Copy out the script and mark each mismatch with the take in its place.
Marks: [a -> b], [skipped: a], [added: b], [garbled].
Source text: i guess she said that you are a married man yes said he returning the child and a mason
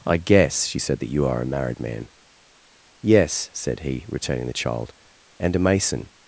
i guess she said that you are a married man yes said he returning the child and a mason